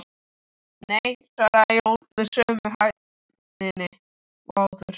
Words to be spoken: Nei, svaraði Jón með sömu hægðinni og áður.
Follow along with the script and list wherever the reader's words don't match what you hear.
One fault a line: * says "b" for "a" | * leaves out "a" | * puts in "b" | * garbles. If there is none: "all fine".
all fine